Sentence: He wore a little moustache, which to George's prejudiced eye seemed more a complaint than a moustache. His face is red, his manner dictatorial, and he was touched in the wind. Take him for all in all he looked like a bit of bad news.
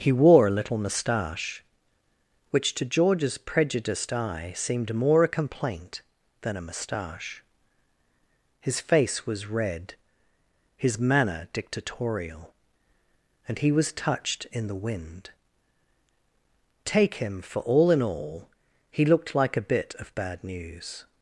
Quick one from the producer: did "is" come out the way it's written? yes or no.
no